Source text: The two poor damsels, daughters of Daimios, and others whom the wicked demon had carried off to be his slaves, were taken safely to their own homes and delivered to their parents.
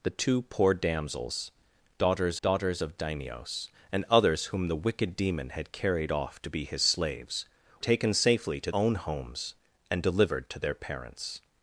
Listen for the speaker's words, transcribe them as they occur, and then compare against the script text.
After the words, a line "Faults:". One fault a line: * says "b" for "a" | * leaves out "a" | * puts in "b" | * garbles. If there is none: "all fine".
The two poor damsels, daughters daughters of Daimios, and others whom the wicked demon had carried off to be his slaves, taken safely to own homes and delivered to their parents.
Faults:
* puts in "daughters"
* leaves out "were"
* leaves out "their"